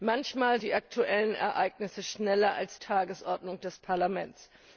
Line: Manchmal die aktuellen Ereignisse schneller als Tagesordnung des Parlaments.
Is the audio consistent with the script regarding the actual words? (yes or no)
yes